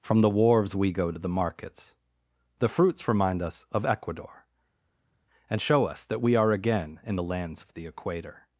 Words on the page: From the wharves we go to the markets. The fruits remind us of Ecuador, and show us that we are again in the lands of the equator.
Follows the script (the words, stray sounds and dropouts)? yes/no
yes